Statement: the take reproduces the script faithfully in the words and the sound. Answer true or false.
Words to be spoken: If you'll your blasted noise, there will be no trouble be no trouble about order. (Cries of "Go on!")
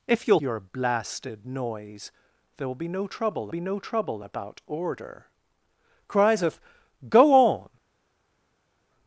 true